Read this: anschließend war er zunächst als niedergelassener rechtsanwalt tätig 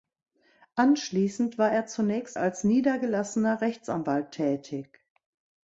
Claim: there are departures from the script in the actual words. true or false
false